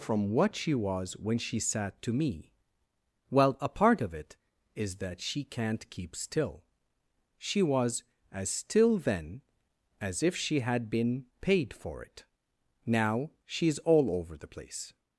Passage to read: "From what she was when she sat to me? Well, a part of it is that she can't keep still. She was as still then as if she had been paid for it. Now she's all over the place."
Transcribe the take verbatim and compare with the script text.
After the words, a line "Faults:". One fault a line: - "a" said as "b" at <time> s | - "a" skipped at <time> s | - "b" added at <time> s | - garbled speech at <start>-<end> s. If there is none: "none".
"From what she was when she sat to me? Well, a part of it is that she can't keep still. She was as still then as if she had been paid for it. Now she's all over the place."
Faults:
none